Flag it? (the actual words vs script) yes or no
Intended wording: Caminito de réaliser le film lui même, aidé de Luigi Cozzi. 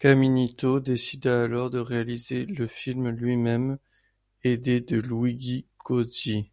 yes